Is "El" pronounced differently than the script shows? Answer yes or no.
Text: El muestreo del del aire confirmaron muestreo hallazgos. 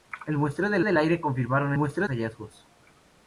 no